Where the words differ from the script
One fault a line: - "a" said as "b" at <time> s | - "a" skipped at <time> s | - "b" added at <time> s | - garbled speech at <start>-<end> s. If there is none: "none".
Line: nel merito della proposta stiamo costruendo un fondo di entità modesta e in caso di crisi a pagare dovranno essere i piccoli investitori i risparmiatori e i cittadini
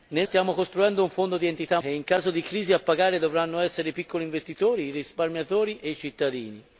- "merito della proposta" skipped at 0.3 s
- "modesta" skipped at 1.8 s